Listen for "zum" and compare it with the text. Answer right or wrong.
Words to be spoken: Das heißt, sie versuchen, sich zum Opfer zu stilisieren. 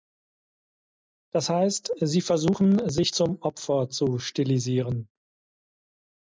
right